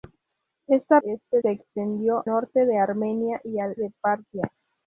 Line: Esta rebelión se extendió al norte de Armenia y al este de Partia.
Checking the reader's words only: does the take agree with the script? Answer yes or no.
no